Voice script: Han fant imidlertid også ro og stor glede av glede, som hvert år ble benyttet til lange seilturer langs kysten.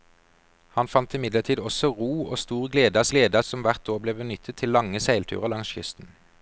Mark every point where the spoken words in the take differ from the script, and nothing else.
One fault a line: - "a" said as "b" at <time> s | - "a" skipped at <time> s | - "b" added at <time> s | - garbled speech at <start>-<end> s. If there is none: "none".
none